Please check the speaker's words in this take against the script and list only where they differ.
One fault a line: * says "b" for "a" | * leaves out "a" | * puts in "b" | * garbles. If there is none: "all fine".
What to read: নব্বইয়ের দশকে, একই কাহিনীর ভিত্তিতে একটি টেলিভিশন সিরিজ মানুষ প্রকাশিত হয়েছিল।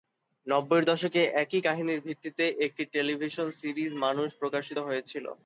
all fine